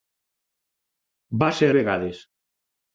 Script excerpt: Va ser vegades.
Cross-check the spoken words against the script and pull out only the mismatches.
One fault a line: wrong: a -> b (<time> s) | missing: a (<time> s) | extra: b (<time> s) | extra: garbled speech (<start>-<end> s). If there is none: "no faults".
no faults